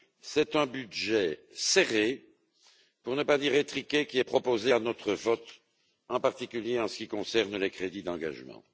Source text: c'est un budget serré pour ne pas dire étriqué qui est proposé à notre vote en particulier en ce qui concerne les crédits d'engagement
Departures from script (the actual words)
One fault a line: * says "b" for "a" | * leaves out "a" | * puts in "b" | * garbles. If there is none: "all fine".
all fine